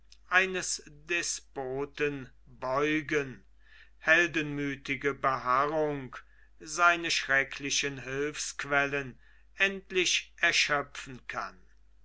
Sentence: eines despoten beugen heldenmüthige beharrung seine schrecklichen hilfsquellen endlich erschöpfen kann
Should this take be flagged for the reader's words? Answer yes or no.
no